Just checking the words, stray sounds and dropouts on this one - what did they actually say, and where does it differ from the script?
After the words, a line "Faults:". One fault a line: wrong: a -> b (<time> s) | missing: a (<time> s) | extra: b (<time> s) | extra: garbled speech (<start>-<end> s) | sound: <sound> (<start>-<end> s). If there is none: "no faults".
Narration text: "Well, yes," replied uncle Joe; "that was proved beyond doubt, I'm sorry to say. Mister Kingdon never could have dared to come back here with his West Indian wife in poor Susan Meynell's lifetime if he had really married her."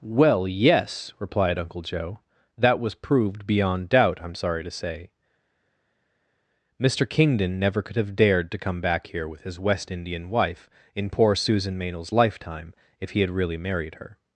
"Well, yes," replied uncle Joe; "that was proved beyond doubt, I'm sorry to say. Mister Kingdon never could have dared to come back here with his West Indian wife in poor Susan Meynell's lifetime if he had really married her."
Faults:
no faults